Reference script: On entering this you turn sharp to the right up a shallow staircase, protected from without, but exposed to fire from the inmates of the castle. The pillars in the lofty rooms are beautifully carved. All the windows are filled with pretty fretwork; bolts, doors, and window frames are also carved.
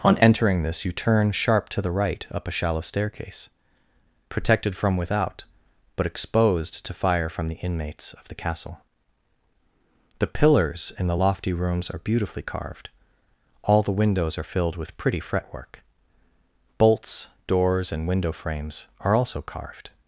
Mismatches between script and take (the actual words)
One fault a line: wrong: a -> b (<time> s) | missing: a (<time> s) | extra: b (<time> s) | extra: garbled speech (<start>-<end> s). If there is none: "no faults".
no faults